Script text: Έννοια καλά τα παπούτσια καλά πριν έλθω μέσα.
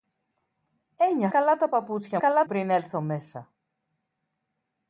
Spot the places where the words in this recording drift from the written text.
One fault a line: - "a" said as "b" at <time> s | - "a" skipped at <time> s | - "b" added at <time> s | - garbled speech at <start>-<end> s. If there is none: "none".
none